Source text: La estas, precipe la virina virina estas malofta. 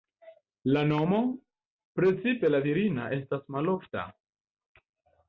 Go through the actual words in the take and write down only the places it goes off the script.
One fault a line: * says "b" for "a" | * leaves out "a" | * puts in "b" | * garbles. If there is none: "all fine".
* says "nomo" for "estas"
* leaves out "virina"